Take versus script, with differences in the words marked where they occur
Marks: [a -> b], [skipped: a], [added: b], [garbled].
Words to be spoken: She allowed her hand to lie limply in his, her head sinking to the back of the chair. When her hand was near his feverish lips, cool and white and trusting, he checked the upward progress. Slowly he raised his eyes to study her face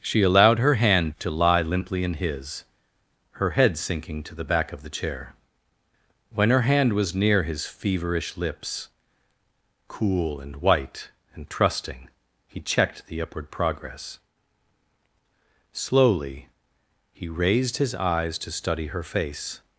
She allowed her hand to lie limply in his, her head sinking to the back of the chair. When her hand was near his feverish lips, cool and white and trusting, he checked the upward progress. Slowly he raised his eyes to study her face